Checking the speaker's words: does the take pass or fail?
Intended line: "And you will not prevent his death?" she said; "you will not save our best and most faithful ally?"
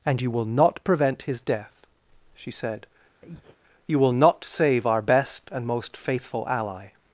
pass